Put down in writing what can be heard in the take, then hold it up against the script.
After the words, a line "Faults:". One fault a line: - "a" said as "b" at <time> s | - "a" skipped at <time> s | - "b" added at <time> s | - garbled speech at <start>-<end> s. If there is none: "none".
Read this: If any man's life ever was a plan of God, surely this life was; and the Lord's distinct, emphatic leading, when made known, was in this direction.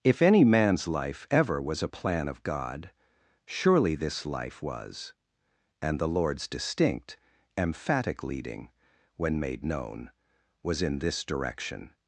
If any man's life ever was a plan of God, surely this life was; and the Lord's distinct, emphatic leading, when made known, was in this direction.
Faults:
none